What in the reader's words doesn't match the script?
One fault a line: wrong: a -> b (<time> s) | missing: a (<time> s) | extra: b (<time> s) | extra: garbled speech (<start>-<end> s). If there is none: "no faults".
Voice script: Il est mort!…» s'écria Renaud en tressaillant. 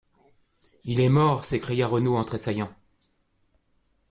no faults